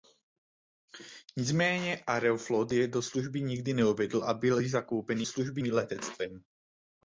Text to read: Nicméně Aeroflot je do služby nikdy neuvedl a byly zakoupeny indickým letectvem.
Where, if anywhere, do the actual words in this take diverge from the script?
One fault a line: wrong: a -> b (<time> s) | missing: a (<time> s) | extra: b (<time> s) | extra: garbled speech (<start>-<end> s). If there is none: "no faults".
wrong: indickým -> služby (5.2 s)